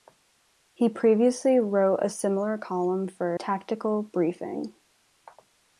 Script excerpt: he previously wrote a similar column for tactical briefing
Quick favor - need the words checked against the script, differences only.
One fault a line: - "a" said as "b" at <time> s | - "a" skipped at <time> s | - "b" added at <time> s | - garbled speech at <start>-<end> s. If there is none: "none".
none